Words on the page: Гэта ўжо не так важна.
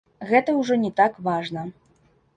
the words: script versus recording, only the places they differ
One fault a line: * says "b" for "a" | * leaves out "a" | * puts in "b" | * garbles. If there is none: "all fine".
all fine